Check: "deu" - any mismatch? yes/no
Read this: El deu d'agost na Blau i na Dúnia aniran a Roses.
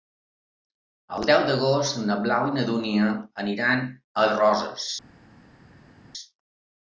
no